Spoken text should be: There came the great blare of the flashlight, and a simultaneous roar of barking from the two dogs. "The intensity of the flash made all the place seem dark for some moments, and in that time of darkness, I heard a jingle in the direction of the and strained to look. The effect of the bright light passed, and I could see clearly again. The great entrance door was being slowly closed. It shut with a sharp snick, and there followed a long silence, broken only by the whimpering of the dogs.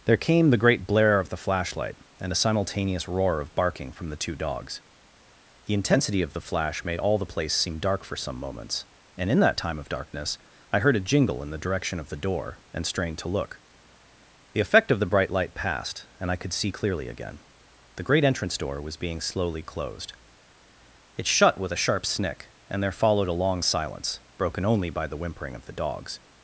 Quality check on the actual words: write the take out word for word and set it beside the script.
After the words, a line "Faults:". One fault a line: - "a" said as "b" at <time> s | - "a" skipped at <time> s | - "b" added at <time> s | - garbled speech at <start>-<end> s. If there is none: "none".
There came the great blare of the flashlight, and a simultaneous roar of barking from the two dogs. "The intensity of the flash made all the place seem dark for some moments, and in that time of darkness, I heard a jingle in the direction of the door, and strained to look. The effect of the bright light passed, and I could see clearly again. The great entrance door was being slowly closed. It shut with a sharp snick, and there followed a long silence, broken only by the whimpering of the dogs.
Faults:
- "door" added at 12.2 s